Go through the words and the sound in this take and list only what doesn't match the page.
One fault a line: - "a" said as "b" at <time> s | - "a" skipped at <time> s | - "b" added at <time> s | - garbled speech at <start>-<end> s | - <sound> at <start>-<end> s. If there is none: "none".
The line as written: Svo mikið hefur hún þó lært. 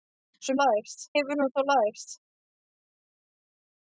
- "mikið" said as "lært" at 0.6 s